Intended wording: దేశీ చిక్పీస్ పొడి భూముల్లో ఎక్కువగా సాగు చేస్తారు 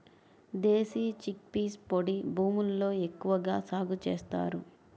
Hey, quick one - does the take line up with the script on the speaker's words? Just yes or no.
yes